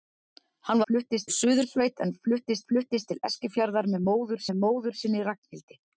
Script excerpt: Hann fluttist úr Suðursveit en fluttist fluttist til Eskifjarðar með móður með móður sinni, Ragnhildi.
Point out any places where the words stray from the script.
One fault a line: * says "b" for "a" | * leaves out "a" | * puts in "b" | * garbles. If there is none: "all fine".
all fine